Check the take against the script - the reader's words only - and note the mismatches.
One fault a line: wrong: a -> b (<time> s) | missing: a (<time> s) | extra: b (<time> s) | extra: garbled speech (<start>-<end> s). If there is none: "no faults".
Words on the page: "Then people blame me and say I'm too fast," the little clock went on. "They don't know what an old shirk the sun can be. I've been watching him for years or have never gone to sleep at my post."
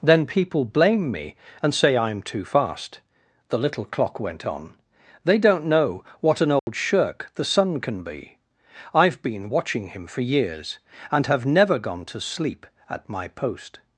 wrong: or -> and (11.1 s)